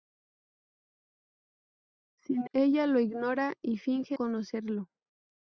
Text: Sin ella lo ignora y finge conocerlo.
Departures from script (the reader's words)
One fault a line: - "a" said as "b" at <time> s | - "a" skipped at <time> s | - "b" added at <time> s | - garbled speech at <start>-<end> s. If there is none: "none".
none